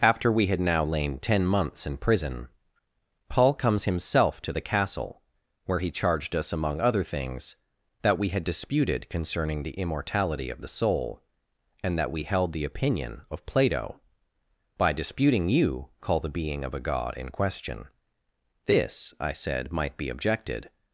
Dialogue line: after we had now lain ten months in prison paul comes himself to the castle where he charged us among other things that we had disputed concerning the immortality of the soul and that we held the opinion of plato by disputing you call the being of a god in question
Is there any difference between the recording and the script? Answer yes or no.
yes